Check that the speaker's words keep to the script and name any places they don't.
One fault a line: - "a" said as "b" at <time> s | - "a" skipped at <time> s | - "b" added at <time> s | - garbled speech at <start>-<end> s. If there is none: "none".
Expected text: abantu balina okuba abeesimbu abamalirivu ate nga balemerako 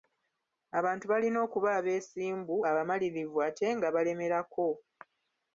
none